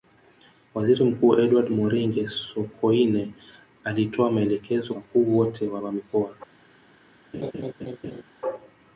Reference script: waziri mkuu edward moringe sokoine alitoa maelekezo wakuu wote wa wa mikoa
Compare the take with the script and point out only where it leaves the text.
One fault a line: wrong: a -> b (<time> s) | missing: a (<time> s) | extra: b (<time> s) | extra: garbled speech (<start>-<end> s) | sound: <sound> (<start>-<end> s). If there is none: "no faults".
sound: laugh (7.3-8.2 s)